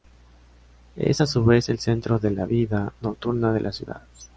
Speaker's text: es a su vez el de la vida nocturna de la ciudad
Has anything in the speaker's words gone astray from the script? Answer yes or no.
yes